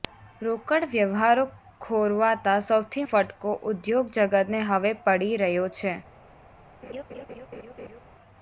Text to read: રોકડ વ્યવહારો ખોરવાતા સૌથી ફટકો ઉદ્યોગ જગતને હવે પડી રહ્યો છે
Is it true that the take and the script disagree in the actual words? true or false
false